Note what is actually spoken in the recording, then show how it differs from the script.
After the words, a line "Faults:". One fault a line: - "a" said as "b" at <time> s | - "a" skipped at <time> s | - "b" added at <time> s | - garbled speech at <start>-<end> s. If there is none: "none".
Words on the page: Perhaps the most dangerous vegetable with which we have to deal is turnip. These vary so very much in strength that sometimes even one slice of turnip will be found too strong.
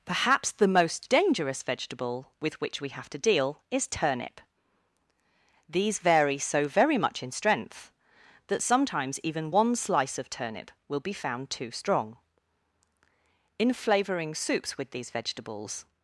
Perhaps the most dangerous vegetable with which we have to deal is turnip. These vary so very much in strength that sometimes even one slice of turnip will be found too strong. In flavouring soups with these vegetables
Faults:
- "In flavouring soups with these vegetables" added at 13.6 s